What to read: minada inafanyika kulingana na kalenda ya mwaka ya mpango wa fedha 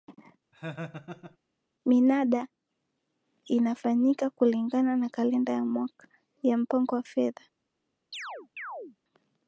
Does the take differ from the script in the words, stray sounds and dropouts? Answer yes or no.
yes